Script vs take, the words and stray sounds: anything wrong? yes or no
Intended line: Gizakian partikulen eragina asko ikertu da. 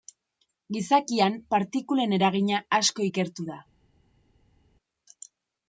no